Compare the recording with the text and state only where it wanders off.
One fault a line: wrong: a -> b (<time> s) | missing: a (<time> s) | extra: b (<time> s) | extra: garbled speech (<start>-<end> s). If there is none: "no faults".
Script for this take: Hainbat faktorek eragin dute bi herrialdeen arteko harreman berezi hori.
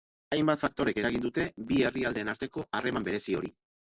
no faults